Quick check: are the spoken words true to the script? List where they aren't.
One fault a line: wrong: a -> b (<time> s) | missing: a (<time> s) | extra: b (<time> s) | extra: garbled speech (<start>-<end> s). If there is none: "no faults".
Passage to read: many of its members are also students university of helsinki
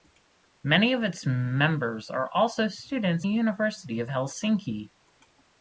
no faults